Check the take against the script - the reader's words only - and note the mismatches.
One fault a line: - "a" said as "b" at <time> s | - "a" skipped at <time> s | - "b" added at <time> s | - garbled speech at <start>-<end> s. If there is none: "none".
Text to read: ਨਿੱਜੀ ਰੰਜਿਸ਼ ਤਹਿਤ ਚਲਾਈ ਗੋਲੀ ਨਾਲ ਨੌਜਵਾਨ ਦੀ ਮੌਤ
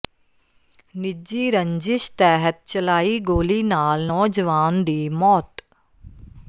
none